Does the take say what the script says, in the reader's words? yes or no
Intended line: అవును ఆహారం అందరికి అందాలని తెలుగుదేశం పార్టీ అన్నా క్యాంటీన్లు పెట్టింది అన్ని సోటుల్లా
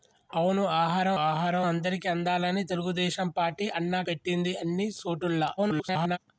no